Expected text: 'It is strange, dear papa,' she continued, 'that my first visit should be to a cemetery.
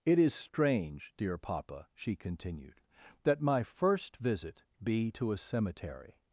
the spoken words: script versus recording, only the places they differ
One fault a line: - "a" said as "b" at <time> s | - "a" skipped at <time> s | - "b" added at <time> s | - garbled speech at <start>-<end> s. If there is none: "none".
- "should" skipped at 4.6 s